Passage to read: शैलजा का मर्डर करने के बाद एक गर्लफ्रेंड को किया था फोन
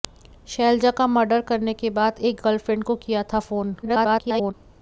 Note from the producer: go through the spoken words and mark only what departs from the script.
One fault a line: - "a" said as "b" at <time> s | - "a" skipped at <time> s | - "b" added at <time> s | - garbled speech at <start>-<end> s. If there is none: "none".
- garbled speech at 3.8-4.5 s